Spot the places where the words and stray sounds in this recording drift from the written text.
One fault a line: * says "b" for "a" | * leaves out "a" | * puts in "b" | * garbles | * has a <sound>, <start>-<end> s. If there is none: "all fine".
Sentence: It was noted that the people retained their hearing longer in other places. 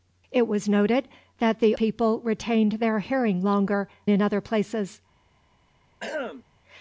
* has a throat clearing, 6.0-6.4 s